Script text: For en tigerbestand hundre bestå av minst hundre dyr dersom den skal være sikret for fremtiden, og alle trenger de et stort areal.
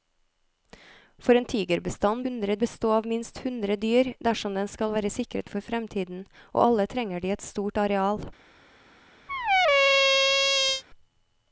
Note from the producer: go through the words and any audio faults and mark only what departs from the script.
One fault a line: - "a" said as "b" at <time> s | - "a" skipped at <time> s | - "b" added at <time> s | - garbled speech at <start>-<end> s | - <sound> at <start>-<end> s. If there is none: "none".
- squeak at 9.3-10.8 s